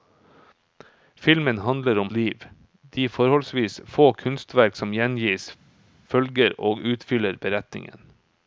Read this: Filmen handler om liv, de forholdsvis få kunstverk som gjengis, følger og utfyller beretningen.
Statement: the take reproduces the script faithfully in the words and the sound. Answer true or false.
true